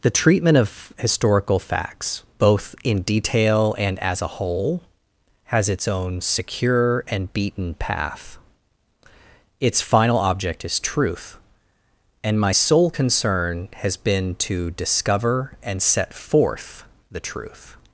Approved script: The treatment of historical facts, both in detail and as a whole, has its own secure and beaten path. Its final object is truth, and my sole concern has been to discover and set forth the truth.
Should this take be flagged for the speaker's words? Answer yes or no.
no